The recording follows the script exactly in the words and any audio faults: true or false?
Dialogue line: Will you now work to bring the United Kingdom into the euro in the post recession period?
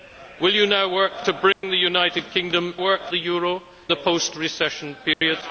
false